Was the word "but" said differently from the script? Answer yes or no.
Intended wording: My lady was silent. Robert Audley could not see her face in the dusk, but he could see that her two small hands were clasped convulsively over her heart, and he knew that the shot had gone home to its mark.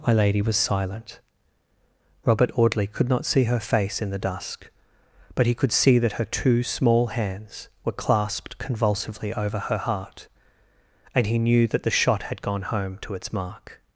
no